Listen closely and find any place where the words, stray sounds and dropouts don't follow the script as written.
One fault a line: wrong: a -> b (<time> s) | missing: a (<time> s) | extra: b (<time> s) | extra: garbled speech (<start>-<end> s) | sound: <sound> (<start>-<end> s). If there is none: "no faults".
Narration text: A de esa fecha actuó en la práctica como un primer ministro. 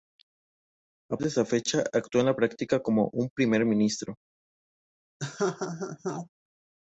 sound: laugh (5.2-6.3 s)